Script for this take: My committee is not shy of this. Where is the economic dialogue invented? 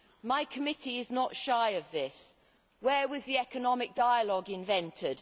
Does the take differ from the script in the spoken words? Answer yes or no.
yes